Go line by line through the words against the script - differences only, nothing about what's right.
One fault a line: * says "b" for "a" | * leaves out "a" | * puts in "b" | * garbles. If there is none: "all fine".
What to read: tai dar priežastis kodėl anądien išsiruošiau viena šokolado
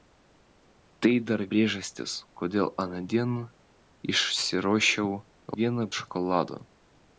all fine